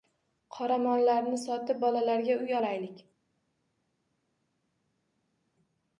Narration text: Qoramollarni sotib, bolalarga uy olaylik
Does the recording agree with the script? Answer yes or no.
yes